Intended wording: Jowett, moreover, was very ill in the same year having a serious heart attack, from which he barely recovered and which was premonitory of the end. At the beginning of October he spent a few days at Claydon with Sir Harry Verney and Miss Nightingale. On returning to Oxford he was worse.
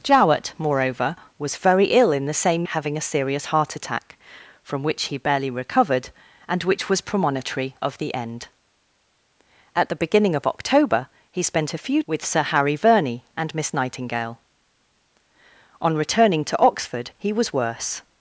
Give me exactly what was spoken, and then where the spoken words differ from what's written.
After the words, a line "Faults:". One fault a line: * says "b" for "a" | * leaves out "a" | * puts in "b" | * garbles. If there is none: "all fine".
Jowett, moreover, was very ill in the same having a serious heart attack, from which he barely recovered and which was premonitory of the end. At the beginning of October he spent a few with Sir Harry Verney and Miss Nightingale. On returning to Oxford he was worse.
Faults:
* leaves out "year"
* leaves out "days at Claydon"